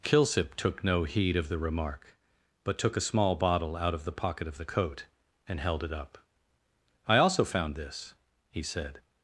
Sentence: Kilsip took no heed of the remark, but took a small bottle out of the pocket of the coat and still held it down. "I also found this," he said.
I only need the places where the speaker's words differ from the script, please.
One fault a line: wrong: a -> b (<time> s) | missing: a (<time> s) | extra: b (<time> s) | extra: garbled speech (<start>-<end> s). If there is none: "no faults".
missing: still (5.6 s)
wrong: down -> up (5.9 s)